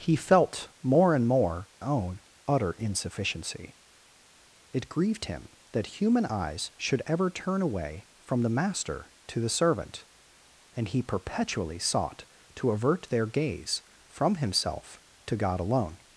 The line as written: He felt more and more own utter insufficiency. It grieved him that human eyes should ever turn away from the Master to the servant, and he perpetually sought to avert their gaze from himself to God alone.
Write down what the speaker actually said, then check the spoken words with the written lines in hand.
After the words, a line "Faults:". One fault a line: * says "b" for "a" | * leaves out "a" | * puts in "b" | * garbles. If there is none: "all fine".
He felt more and more own utter insufficiency. It grieved him that human eyes should ever turn away from the Master to the servant, and he perpetually sought to avert their gaze from himself to God alone.
Faults:
all fine